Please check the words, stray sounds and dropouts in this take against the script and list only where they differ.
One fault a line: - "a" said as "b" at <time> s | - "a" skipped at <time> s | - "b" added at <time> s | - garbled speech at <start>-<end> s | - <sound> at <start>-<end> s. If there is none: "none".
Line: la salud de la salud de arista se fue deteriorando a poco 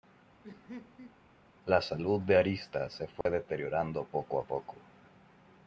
- laugh at 0.4-1.2 s
- "la salud de" skipped at 2.4 s
- dropout at 3.2-3.3 s
- "poco" added at 4.0 s